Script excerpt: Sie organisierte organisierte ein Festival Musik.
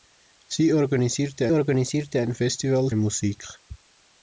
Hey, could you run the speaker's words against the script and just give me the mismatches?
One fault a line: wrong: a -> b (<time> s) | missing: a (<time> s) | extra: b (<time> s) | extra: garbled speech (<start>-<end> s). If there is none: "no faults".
no faults